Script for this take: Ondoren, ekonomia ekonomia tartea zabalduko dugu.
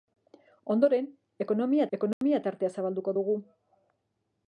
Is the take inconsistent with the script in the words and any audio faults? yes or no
yes